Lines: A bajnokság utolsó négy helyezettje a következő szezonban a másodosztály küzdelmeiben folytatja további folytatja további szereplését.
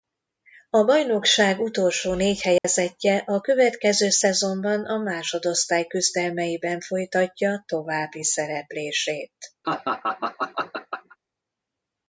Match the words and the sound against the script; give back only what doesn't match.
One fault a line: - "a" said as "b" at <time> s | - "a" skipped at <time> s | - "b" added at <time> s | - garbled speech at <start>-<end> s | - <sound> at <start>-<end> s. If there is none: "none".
- dropout at 2.6-2.6 s
- "folytatja további" skipped at 8.2 s
- laugh at 9.6-11.2 s